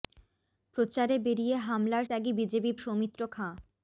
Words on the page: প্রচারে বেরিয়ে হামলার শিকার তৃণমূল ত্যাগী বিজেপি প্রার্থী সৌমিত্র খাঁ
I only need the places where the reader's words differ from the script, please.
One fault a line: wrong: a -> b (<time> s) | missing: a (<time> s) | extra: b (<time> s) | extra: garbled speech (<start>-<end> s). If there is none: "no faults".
missing: শিকার তৃণমূল (2.0 s)
missing: প্রার্থী (2.7 s)